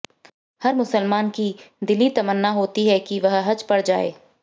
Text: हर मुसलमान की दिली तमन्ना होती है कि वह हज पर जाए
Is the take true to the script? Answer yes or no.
yes